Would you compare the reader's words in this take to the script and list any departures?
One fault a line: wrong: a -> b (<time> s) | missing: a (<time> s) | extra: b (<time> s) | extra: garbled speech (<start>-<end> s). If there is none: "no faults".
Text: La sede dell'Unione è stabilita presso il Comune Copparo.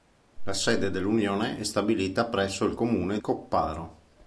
no faults